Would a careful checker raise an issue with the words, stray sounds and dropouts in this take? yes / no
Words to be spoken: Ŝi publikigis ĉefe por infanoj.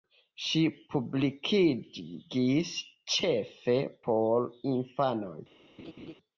yes